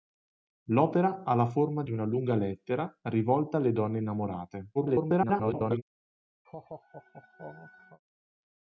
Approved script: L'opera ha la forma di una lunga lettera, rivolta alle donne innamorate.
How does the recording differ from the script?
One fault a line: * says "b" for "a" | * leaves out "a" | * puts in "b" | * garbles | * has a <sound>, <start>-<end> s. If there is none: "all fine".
* garbles
* has a laugh, 6.4-8.0 s